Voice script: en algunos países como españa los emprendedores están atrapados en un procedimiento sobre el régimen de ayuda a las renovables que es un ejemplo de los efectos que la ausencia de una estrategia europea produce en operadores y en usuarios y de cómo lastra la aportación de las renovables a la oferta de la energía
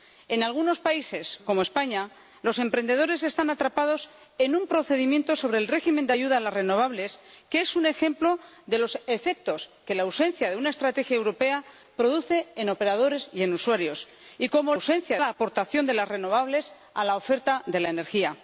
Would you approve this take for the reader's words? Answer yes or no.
no